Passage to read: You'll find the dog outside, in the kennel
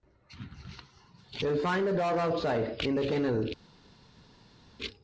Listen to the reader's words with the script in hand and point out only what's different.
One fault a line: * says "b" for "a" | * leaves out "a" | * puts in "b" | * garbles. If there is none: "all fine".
all fine